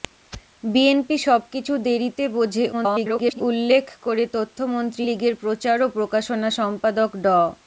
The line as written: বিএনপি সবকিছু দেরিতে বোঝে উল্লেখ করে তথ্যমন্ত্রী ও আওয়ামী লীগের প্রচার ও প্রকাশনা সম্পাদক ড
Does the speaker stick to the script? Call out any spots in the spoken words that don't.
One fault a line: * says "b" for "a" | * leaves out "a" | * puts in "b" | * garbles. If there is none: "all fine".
* garbles
* leaves out "ও আওয়ামী"